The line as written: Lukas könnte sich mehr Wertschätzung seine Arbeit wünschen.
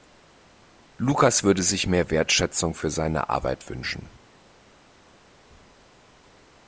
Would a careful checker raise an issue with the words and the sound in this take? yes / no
yes